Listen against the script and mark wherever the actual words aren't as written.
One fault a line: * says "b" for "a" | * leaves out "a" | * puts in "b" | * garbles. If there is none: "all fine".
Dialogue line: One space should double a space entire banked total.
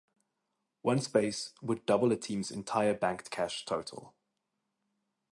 * says "would" for "should"
* says "team's" for "space"
* puts in "cash"